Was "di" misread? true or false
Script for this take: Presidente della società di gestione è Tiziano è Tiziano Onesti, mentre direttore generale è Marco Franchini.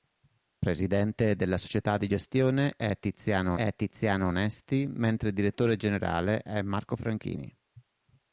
false